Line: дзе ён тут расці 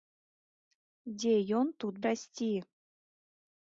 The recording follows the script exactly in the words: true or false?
true